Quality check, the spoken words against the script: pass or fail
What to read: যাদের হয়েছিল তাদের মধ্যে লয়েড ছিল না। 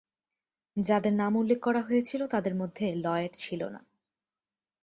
fail